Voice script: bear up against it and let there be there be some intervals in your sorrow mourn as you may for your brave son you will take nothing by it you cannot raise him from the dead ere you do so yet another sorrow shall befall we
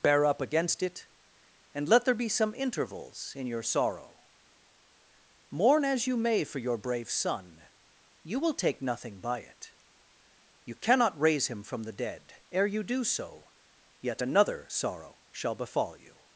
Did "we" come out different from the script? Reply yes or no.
yes